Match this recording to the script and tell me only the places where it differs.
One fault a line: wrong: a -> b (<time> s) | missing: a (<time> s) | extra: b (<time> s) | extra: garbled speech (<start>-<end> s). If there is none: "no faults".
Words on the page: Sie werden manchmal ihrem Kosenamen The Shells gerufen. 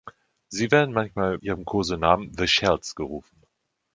no faults